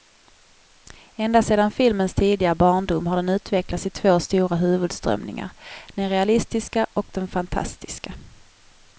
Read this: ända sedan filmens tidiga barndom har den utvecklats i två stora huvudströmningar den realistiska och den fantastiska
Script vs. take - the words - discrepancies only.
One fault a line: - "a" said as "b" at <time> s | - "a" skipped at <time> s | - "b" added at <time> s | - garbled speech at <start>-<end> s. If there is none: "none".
none